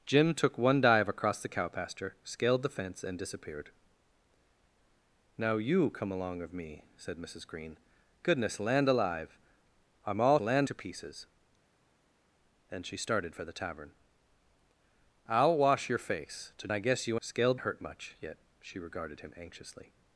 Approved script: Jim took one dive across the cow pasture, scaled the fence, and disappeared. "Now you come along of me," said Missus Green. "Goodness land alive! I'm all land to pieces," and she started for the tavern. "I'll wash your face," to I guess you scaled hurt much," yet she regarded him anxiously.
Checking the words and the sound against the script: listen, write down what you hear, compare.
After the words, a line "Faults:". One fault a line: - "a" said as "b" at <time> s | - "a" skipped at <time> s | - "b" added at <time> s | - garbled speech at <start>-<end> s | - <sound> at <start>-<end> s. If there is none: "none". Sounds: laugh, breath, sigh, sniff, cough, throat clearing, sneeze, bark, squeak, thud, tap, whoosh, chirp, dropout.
Jim took one dive across the cow pasture, scaled the fence, and disappeared. "Now you come along of me," said Missus Green. "Goodness land alive! I'm all land to pieces," and she started for the tavern. "I'll wash your face," to I guess you scaled hurt much," yet she regarded him anxiously.
Faults:
none